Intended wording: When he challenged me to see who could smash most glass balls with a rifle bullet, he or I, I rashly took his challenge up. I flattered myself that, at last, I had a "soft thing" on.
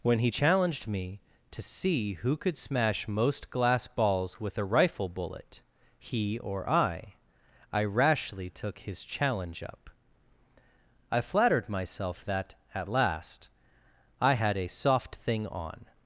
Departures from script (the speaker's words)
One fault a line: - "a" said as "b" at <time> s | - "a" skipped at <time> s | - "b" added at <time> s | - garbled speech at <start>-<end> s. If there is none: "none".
none